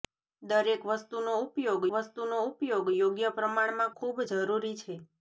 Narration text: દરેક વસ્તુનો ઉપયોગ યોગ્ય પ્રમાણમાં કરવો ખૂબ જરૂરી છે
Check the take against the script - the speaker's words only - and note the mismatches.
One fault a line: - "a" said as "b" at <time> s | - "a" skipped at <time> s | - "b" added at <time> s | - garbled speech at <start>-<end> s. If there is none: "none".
- "વસ્તુનો ઉપયોગ" added at 1.9 s
- "કરવો" skipped at 3.9 s